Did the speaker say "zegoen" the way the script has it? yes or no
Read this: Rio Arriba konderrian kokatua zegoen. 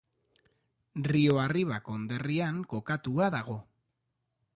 no